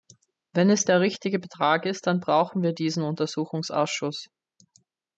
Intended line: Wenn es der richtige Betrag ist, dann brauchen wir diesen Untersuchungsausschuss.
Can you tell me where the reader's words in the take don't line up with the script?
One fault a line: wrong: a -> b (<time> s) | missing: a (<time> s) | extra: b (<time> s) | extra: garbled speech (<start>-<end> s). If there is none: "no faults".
no faults